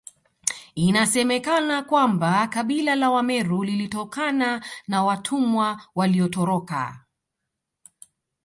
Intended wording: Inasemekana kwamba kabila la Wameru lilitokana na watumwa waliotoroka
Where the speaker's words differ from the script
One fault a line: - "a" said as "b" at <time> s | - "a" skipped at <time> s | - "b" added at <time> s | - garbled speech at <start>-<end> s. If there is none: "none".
none